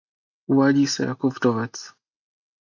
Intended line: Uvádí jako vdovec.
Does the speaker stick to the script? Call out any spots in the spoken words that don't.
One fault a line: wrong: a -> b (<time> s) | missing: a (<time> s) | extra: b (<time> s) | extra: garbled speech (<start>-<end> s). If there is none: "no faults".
extra: se (0.9 s)